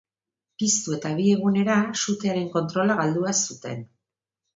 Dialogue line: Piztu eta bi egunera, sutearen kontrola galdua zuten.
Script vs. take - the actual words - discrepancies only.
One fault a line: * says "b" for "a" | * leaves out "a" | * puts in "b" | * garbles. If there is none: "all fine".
all fine